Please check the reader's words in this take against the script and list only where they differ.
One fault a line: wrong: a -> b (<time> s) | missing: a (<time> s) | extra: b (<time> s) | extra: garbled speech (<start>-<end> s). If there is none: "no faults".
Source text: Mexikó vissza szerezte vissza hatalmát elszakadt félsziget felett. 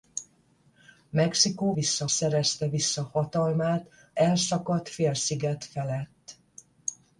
no faults